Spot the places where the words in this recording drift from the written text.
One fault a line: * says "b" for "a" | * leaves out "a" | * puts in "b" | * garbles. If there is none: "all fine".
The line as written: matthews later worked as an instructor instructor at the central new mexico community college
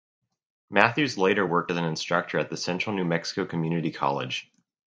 * leaves out "instructor"